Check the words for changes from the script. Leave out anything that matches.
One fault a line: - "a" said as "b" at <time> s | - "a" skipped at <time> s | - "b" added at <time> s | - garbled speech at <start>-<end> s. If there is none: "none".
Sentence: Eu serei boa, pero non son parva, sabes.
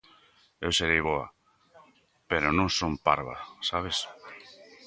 none